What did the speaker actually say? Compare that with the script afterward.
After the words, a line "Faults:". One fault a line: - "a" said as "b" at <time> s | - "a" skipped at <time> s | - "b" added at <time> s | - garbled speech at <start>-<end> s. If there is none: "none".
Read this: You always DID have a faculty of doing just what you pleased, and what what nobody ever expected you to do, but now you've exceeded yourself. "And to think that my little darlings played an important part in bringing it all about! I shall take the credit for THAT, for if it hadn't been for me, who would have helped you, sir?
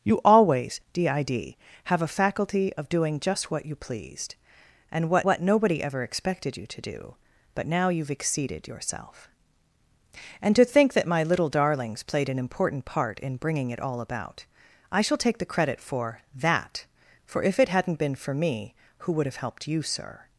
You always DID have a faculty of doing just what you pleased, and what what nobody ever expected you to do, but now you've exceeded yourself. "And to think that my little darlings played an important part in bringing it all about! I shall take the credit for THAT, for if it hadn't been for me, who would have helped you, sir?
Faults:
none